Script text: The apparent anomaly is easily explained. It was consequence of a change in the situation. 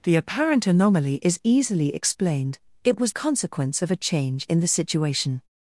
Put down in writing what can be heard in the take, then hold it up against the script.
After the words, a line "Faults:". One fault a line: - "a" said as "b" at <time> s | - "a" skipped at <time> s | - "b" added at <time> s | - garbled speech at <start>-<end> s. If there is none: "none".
The apparent anomaly is easily explained. It was consequence of a change in the situation.
Faults:
none